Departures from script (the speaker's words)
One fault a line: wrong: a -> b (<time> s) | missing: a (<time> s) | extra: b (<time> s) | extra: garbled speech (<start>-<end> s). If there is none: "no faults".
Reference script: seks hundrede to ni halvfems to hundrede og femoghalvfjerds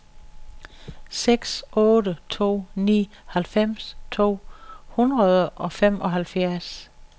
wrong: hundrede -> otte (1.8 s)